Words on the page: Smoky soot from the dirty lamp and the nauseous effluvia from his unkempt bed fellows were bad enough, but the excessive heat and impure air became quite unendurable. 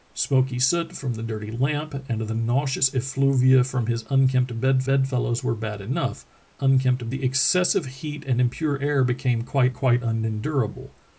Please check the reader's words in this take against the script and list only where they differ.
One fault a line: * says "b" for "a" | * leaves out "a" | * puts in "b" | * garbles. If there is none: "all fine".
* puts in "bed"
* says "unkempt" for "but"
* puts in "quite"